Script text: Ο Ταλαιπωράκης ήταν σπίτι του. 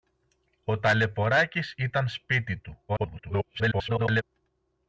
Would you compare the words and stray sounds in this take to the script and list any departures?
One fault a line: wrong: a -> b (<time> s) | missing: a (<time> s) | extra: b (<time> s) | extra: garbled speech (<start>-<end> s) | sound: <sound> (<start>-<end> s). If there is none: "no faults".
extra: garbled speech (2.9-4.2 s)